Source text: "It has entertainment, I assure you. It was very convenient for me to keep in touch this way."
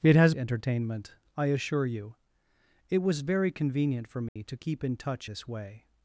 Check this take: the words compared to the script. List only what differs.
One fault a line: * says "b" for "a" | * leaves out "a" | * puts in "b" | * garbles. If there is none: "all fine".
all fine